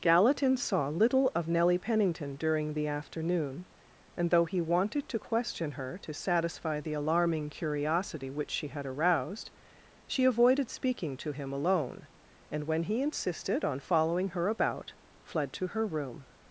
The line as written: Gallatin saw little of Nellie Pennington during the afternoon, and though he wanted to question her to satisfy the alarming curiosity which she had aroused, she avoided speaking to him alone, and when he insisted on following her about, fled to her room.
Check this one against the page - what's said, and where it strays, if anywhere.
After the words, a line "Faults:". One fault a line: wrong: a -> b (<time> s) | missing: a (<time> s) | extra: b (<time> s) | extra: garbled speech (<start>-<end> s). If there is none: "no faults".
Gallatin saw little of Nellie Pennington during the afternoon, and though he wanted to question her to satisfy the alarming curiosity which she had aroused, she avoided speaking to him alone, and when he insisted on following her about, fled to her room.
Faults:
no faults